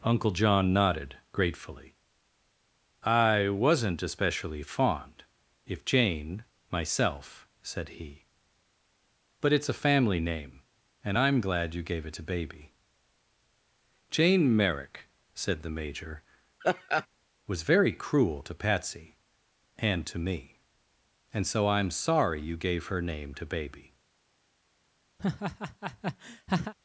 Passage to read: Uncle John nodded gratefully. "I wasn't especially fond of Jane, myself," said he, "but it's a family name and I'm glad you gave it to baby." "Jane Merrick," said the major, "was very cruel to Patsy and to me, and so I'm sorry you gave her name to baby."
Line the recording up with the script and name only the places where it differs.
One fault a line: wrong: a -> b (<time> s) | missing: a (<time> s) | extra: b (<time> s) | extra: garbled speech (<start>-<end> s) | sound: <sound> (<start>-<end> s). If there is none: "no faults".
wrong: of -> if (5.7 s)
sound: laugh (16.6-17.1 s)
sound: laugh (25.2-26.7 s)